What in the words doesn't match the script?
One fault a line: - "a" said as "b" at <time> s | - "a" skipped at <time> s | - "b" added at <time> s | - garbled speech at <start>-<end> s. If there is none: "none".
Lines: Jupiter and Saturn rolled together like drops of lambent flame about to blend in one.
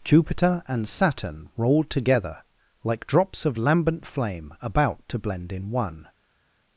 none